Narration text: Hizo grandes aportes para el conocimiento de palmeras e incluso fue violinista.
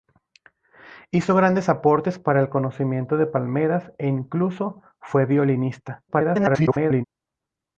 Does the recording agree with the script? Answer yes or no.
no